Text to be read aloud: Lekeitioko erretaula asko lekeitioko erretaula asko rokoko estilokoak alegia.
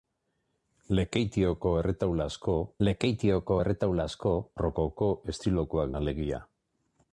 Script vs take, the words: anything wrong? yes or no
no